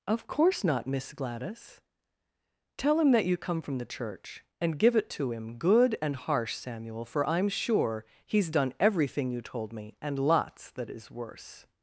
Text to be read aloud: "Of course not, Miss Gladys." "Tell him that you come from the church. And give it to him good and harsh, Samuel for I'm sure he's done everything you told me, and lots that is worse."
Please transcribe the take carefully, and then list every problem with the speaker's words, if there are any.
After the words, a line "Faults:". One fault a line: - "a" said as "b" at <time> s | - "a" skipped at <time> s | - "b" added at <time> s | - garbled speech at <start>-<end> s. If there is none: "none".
"Of course not, Miss Gladys." "Tell him that you come from the church. And give it to him good and harsh, Samuel for I'm sure he's done everything you told me, and lots that is worse."
Faults:
none